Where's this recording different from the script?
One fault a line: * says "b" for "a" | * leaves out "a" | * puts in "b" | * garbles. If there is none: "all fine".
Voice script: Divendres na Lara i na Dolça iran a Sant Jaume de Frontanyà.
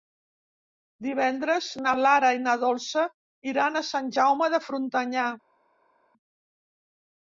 all fine